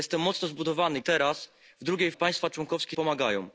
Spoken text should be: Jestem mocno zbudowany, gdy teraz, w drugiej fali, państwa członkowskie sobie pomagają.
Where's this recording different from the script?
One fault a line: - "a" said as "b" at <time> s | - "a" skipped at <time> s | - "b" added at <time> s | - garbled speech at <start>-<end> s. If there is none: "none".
- "gdy" skipped at 1.0 s
- "fali" skipped at 2.1 s
- "sobie" skipped at 3.0 s